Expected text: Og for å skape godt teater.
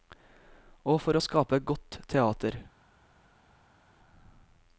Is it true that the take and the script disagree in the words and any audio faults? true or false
false